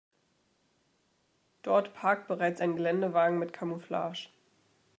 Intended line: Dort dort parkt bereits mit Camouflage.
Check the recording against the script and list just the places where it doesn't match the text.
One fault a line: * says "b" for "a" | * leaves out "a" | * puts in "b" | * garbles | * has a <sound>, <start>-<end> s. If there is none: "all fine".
* leaves out "dort"
* puts in "ein Geländewagen"